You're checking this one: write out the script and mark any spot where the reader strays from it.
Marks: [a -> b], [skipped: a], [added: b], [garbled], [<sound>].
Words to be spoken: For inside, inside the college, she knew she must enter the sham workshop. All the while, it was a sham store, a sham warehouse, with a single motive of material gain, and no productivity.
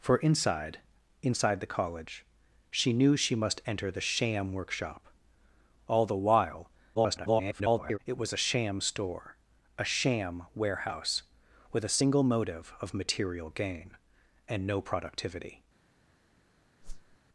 For inside, inside the college, she knew she must enter the sham workshop. All the while, [garbled] it was a sham store, a sham warehouse, with a single motive of material gain, and no productivity. [whoosh]